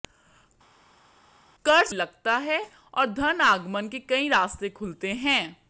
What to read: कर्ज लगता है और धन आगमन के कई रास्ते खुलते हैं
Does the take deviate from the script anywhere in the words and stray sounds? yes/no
no